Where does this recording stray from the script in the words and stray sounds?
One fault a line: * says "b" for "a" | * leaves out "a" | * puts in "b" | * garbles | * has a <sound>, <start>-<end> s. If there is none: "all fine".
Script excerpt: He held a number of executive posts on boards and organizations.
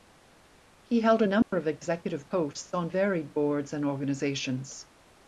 * has a dropout, 1.4-1.5 s
* puts in "varied"